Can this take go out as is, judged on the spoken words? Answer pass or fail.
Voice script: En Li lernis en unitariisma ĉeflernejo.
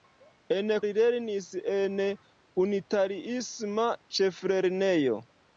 pass